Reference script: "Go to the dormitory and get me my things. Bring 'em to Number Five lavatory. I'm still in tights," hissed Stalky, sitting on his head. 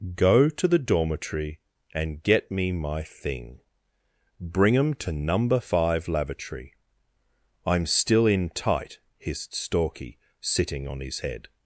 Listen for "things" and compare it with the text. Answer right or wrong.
wrong